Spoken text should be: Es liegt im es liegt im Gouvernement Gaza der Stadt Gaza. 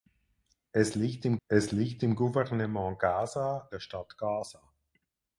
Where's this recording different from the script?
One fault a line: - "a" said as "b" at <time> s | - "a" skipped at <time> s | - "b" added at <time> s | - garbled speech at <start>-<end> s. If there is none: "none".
none